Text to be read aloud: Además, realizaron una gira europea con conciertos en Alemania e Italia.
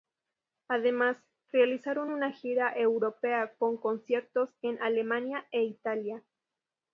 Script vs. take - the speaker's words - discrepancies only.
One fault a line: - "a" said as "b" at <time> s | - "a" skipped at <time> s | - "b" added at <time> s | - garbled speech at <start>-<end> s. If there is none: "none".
none